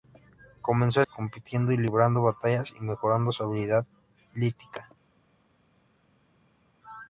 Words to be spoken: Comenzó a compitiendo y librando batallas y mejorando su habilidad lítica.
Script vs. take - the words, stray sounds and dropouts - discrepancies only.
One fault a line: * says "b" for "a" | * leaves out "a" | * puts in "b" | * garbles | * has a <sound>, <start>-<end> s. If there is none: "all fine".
all fine